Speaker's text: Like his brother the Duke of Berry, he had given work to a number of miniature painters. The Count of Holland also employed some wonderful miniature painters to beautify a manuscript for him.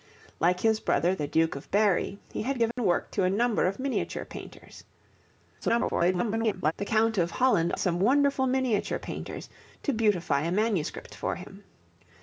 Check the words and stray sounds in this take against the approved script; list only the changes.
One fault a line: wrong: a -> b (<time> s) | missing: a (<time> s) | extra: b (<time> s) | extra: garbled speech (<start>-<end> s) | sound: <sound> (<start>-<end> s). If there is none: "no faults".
sound: dropout (2.7-2.8 s)
extra: garbled speech (5.6-6.7 s)
missing: also employed (7.7 s)